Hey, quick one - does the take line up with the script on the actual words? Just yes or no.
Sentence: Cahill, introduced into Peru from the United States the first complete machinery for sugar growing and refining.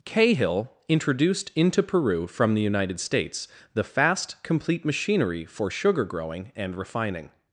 no